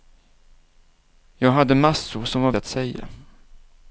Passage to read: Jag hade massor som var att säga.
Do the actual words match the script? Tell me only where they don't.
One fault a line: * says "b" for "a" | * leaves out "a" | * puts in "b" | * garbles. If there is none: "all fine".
all fine